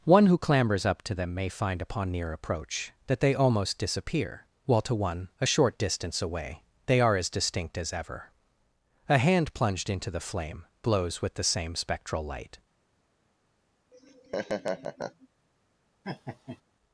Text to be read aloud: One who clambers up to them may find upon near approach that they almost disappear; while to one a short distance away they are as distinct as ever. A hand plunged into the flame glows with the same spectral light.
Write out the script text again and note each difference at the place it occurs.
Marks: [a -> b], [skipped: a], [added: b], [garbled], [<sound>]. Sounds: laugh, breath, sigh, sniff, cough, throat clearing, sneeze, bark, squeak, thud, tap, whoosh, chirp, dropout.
One who clambers up to them may find upon near approach that they almost disappear; while to one a short distance away they are as distinct as ever. A hand plunged into the flame [glows -> blows] with the same spectral light. [laugh] [laugh]